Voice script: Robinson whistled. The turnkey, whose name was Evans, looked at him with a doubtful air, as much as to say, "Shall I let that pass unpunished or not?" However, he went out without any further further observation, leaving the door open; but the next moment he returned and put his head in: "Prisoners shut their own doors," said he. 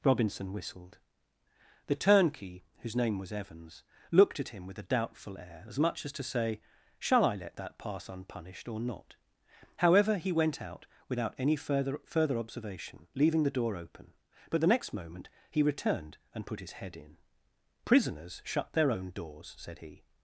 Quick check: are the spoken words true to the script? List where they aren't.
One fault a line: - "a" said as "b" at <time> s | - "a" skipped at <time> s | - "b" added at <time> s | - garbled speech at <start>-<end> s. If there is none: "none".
none